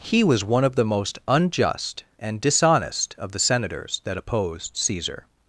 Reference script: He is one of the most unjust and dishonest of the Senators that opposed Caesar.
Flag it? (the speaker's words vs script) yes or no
yes